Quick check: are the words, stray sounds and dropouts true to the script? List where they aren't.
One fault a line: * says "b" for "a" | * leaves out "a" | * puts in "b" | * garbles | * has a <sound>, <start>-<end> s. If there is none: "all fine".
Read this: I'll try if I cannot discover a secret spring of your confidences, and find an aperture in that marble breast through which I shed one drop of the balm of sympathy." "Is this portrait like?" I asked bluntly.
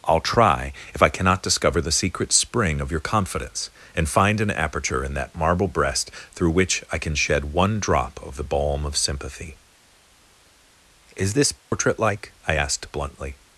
* says "the" for "a"
* says "confidence" for "confidences"
* puts in "can"
* has a dropout, 11.6-11.7 s